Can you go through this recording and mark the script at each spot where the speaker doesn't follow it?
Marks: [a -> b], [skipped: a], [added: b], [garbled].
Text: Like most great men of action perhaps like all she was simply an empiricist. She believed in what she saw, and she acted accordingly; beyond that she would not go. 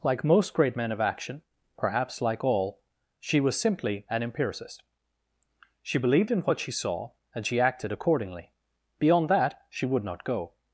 Like most great men of action perhaps like all she was simply an empiricist. She believed in what she saw, and she acted accordingly; beyond that she would not go.